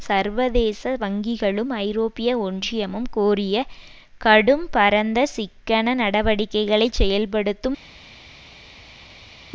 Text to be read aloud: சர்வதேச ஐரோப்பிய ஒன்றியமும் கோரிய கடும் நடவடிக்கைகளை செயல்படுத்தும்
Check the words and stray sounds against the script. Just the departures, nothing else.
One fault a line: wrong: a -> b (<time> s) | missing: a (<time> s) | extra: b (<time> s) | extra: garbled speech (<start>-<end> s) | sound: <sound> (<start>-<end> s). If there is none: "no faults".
extra: வங்கிகளும் (1.0 s)
extra: பரந்த சிக்கன (4.7 s)